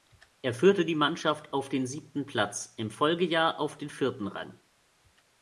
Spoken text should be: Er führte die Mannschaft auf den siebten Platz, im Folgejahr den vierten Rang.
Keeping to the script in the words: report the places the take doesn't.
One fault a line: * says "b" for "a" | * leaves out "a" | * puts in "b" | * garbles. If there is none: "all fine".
* puts in "auf"